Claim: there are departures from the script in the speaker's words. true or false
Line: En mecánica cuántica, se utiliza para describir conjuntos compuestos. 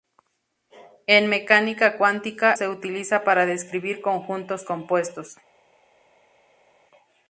false